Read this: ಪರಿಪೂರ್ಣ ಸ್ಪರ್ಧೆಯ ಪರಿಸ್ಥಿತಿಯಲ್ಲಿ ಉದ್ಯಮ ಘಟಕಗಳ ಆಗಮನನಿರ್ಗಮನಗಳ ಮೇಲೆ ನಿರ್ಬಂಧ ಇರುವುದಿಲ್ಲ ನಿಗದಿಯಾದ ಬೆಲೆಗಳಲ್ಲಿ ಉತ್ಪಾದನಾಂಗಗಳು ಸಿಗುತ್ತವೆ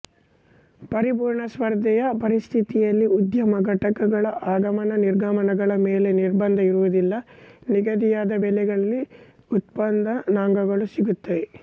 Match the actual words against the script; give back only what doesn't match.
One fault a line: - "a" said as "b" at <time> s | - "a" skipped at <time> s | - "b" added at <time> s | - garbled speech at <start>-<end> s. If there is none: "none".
none